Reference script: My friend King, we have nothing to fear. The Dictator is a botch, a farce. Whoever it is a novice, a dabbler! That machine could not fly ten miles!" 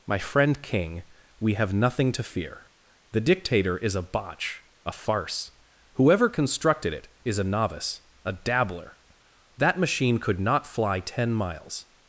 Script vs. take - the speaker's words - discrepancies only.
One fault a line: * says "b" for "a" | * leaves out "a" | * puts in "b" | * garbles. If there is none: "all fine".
* puts in "constructed"